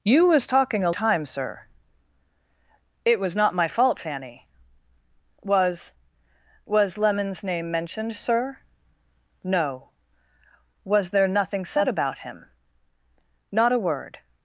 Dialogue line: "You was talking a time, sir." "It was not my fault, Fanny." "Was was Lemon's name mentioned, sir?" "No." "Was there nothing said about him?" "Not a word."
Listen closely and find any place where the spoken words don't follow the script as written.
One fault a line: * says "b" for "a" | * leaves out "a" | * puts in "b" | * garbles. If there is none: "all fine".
all fine